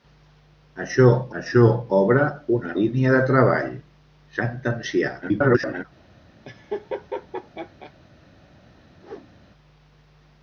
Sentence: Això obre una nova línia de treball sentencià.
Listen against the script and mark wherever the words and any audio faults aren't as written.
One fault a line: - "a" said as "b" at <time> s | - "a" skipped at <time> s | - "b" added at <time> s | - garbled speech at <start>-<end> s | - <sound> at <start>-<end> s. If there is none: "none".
- "això" added at 1.4 s
- "nova" skipped at 2.8 s
- garbled speech at 5.2-5.9 s
- laugh at 6.4-7.9 s
- whoosh at 9.0-9.3 s